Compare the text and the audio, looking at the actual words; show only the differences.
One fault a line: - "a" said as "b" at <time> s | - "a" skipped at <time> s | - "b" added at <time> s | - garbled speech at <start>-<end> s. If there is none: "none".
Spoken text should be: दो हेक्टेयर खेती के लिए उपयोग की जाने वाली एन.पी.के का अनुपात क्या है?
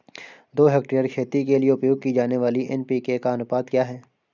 none